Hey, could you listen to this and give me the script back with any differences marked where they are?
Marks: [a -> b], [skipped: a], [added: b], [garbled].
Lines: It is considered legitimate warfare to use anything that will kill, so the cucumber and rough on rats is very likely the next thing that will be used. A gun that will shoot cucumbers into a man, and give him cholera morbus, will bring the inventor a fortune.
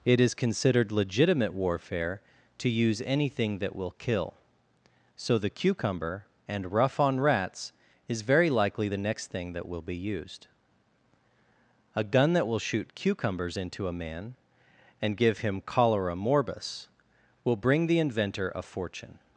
It is considered legitimate warfare to use anything that will kill, so the cucumber and rough on rats is very likely the next thing that will be used. A gun that will shoot cucumbers into a man, and give him cholera morbus, will bring the inventor a fortune.